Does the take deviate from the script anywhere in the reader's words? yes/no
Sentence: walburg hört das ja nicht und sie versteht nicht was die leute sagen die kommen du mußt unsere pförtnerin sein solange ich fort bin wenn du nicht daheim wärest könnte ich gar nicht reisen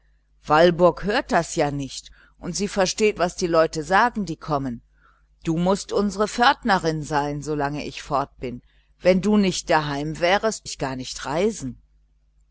yes